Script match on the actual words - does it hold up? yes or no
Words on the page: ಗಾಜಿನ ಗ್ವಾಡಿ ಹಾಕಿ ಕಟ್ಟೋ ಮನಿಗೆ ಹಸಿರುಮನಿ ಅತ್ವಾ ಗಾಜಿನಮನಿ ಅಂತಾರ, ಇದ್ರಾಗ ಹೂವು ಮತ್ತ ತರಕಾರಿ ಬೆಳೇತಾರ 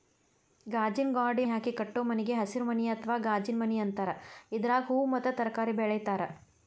yes